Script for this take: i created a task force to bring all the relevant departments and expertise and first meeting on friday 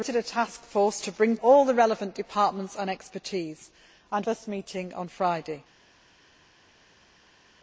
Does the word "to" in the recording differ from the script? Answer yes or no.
no